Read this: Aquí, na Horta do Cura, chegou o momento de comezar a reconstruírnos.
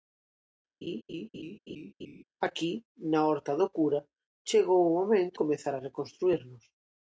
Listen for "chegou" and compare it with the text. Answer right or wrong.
right